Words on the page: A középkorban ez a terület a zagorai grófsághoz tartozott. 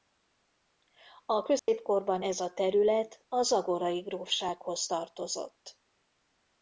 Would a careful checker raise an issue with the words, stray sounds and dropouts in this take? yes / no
yes